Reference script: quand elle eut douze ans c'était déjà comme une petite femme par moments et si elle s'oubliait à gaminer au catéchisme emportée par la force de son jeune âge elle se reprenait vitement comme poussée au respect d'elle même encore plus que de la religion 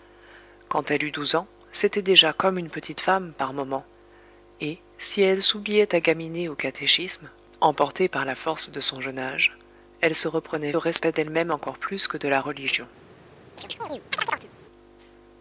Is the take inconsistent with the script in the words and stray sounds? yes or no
yes